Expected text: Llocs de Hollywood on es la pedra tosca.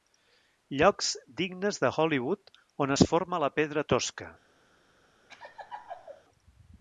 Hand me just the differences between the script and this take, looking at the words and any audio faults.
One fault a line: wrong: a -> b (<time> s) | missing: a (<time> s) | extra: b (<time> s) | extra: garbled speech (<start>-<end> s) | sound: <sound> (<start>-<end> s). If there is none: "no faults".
extra: dignes (1.4 s)
extra: forma (3.1 s)
sound: laugh (5.3-6.2 s)